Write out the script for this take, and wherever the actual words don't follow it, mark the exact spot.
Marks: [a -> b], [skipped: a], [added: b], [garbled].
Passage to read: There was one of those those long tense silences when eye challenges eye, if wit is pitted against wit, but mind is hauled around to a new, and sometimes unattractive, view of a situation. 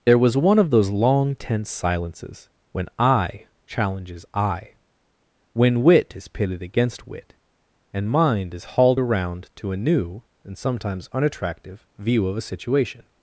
There was one of those [skipped: those] long tense silences when eye challenges eye, [if -> when] wit is pitted against wit, [but -> and] mind is hauled around to a new, and sometimes unattractive, view of a situation.